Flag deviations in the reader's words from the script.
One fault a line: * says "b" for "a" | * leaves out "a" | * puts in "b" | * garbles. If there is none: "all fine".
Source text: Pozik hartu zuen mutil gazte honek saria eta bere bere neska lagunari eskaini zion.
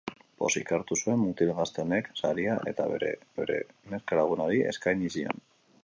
all fine